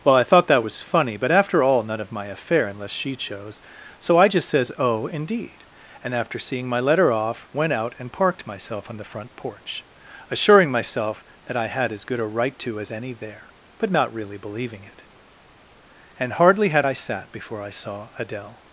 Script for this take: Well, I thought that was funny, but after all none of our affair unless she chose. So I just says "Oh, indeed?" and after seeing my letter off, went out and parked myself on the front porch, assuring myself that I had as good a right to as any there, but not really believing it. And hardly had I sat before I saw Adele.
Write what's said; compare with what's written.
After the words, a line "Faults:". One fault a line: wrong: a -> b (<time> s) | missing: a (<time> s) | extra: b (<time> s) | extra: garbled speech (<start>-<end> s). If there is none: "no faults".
Well, I thought that was funny, but after all none of my affair unless she chose. So I just says "Oh, indeed?" and after seeing my letter off, went out and parked myself on the front porch, assuring myself that I had as good a right to as any there, but not really believing it. And hardly had I sat before I saw Adele.
Faults:
wrong: our -> my (2.1 s)